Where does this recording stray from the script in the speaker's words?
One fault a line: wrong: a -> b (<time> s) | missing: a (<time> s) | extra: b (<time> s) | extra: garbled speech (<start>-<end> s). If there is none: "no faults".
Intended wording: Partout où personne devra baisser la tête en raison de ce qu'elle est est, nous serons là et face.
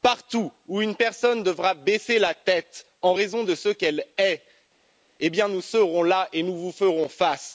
extra: une (0.8 s)
missing: est (4.4 s)
extra: nous vous ferons (6.4 s)